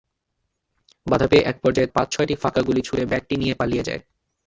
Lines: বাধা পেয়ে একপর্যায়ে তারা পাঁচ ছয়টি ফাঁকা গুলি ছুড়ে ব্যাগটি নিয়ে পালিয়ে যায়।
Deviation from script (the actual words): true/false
true